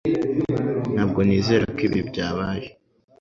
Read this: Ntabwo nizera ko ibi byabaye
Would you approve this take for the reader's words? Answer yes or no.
yes